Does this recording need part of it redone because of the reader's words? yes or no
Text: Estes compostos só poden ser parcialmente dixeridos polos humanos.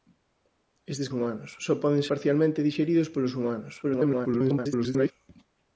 yes